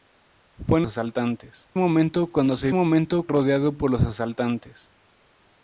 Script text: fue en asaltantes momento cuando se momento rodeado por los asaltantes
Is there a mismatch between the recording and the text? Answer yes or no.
no